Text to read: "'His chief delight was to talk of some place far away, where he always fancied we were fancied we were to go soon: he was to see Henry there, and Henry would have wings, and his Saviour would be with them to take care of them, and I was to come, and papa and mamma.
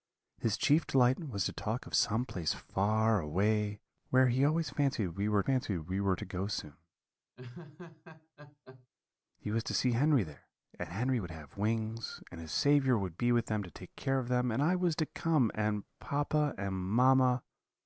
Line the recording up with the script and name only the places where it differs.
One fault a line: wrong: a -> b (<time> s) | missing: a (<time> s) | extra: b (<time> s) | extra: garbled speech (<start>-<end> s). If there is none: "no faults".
no faults